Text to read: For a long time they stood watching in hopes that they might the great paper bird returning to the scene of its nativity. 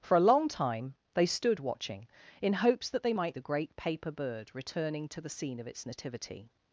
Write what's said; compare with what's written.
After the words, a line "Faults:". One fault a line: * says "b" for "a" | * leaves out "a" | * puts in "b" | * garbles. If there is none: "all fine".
For a long time they stood watching in hopes that they might the great paper bird returning to the scene of its nativity.
Faults:
all fine